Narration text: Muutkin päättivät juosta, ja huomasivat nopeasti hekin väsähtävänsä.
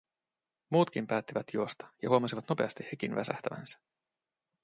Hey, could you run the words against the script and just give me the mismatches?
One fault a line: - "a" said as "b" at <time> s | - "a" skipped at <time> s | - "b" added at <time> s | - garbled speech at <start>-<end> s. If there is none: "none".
none